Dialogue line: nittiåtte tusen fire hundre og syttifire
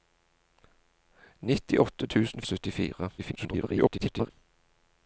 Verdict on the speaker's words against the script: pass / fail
fail